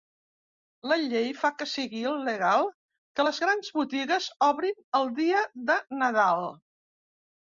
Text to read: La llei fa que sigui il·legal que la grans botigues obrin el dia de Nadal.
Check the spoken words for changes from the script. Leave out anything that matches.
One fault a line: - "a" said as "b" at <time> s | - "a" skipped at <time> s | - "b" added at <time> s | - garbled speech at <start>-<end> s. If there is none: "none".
- "la" said as "les" at 3.3 s